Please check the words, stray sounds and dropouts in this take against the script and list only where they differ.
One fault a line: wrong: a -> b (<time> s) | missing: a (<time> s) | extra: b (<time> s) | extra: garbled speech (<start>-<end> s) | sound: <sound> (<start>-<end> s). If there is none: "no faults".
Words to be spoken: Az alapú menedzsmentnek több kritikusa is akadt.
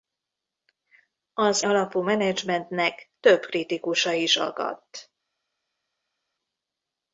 no faults